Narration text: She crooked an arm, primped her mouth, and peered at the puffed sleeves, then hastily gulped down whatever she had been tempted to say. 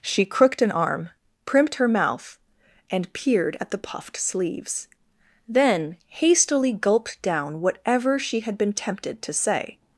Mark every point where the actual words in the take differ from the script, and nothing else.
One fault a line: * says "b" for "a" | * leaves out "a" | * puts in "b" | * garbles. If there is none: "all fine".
all fine